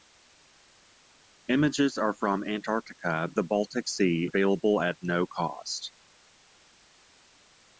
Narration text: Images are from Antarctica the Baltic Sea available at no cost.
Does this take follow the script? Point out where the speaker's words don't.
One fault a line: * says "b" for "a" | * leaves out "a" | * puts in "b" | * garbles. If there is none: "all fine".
all fine